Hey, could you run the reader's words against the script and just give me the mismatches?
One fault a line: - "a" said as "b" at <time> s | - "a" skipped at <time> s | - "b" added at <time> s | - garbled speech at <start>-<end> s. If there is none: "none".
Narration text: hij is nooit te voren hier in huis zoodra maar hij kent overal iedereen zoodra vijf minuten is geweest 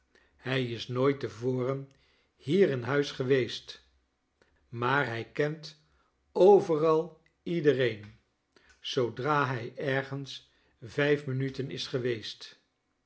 - "zoodra" said as "geweest" at 3.1 s
- "hij ergens" added at 9.5 s